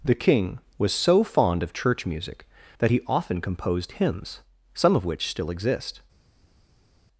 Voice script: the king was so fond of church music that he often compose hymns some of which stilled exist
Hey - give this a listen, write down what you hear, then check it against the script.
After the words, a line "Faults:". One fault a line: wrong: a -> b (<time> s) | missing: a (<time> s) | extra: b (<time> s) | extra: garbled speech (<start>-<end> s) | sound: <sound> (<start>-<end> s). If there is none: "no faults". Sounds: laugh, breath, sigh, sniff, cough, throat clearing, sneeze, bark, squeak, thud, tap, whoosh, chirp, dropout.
the king was so fond of church music that he often composed hymns some of which still exist
Faults:
wrong: compose -> composed (3.4 s)
wrong: stilled -> still (5.3 s)